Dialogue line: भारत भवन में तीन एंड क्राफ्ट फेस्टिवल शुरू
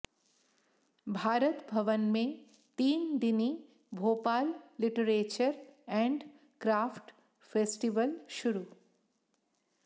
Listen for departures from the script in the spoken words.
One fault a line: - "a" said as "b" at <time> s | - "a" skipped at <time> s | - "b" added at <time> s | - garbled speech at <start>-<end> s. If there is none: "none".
- "दिनी भोपाल लिटरेचर" added at 3.2 s